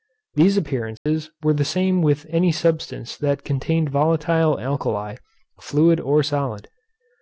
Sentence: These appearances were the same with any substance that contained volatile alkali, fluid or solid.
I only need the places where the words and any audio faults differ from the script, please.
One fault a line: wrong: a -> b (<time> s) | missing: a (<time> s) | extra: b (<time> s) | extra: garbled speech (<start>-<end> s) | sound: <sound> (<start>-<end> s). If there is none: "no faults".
sound: dropout (1.0-1.1 s)